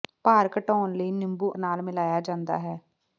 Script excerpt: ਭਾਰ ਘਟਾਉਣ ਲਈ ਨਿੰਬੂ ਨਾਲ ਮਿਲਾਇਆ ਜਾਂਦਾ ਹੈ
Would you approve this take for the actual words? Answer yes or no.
yes